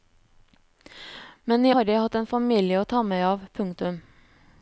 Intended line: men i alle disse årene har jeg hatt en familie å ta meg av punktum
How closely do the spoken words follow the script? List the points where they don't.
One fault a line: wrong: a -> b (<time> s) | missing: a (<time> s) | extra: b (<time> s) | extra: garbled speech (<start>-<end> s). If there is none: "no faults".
missing: alle disse årene (1.7 s)